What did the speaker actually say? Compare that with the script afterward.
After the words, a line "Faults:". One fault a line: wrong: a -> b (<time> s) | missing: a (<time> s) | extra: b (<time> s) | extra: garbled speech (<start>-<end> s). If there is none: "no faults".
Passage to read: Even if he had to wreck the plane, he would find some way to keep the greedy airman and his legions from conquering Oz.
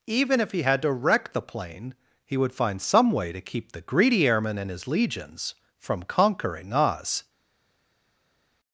Even if he had to wreck the plane, he would find some way to keep the greedy airman and his legions from conquering Oz.
Faults:
no faults